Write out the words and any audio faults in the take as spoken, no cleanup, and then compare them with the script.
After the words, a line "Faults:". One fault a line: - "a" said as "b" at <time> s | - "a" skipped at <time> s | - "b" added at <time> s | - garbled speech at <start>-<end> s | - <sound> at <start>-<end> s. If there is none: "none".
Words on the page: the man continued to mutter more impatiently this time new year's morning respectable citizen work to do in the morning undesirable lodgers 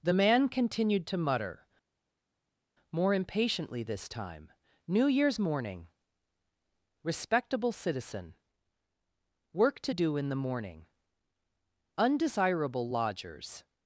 the man continued to mutter more impatiently this time new year's morning respectable citizen work to do in the morning undesirable lodgers
Faults:
none